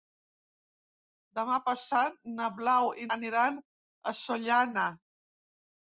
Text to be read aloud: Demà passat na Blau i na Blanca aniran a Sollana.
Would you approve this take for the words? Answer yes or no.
no